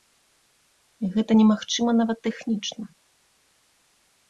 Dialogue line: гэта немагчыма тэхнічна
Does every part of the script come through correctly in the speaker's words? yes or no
no